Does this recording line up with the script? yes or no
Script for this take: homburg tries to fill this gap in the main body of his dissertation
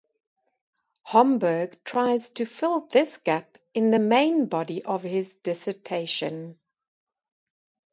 yes